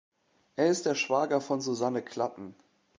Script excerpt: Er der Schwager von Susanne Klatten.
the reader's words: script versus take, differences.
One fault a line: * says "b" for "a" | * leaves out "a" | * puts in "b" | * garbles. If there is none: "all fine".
* puts in "ist"